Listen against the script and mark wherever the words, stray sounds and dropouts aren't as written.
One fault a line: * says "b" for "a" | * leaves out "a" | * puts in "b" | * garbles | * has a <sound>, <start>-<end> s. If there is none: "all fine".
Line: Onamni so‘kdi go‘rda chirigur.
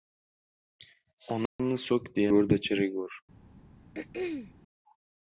* has a dropout, 1.5-1.6 s
* has a throat clearing, 3.9-4.5 s